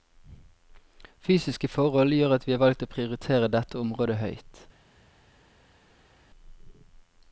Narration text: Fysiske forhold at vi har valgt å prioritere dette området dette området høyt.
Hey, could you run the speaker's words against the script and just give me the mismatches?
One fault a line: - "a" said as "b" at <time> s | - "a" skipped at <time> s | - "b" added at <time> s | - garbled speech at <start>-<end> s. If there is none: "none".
- "gjør" added at 2.2 s
- "dette området" skipped at 4.2 s